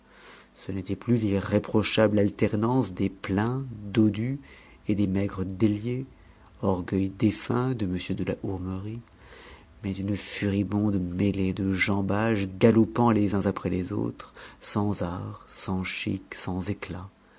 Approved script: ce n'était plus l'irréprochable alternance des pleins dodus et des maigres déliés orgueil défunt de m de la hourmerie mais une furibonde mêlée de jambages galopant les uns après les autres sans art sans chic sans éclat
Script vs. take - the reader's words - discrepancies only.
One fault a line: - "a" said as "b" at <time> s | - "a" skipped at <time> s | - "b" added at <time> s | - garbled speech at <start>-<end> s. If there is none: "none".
none